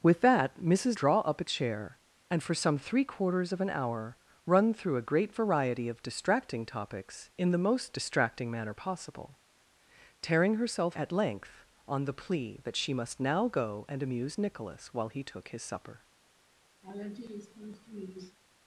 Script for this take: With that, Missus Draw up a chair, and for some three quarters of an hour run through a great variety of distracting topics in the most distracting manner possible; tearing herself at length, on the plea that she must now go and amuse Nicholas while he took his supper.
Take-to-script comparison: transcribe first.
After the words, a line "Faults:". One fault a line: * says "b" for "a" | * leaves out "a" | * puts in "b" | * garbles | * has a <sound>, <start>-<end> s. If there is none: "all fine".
With that, Missus Draw up a chair, and for some three quarters of an hour run through a great variety of distracting topics in the most distracting manner possible; tearing herself at length, on the plea that she must now go and amuse Nicholas while he took his supper.
Faults:
* has a laugh, 16.8-18.4 s